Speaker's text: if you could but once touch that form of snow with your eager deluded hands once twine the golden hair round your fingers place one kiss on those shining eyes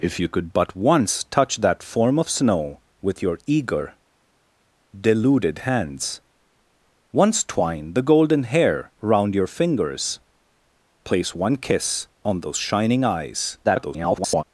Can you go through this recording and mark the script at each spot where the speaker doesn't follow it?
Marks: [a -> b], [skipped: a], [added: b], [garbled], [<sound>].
if you could but once touch that form of snow with your eager deluded hands once twine the golden hair round your fingers place one kiss on those shining eyes [garbled]